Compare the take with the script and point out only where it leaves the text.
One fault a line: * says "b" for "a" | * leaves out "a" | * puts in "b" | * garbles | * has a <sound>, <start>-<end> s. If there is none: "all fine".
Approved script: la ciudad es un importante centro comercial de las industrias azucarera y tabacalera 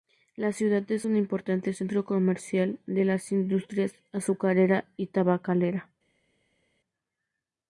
all fine